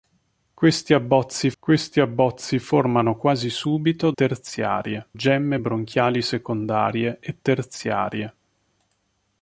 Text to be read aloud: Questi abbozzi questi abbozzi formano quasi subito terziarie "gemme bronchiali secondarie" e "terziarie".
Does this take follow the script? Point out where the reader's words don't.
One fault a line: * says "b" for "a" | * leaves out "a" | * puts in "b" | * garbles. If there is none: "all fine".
all fine